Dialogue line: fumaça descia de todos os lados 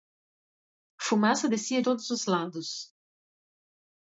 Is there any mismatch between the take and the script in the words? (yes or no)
yes